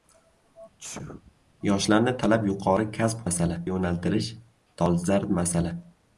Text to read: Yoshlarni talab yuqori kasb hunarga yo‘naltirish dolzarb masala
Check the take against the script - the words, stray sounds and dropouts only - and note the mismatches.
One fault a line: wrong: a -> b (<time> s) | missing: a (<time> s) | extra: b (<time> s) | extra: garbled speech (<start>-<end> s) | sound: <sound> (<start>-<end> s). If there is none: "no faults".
sound: sneeze (0.8-1.3 s)
wrong: hunarga -> masala (3.3 s)